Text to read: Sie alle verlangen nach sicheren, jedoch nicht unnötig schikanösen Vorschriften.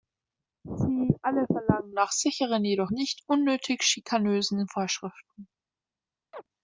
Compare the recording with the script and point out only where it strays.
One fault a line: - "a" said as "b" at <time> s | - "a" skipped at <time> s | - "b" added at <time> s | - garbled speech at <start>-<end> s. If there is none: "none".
none